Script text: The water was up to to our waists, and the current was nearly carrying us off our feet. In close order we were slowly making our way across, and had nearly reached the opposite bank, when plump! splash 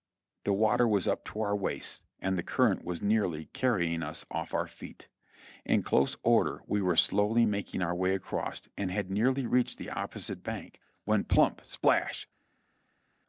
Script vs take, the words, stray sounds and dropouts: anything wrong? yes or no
yes